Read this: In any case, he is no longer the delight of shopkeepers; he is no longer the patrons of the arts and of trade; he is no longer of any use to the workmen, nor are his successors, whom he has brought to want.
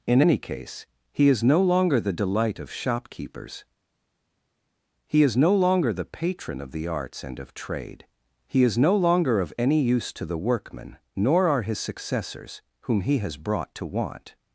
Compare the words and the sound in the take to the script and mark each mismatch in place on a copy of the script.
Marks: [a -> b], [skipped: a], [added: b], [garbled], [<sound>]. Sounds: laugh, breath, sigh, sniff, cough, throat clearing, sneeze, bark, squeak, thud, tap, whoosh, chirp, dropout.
In any case, he is no longer the delight of shopkeepers; he is no longer the [patrons -> patron] of the arts and of trade; he is no longer of any use to the workmen, nor are his successors, whom he has brought to want.